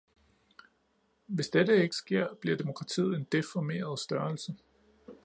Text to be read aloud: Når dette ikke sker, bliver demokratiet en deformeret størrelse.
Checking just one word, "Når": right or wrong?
wrong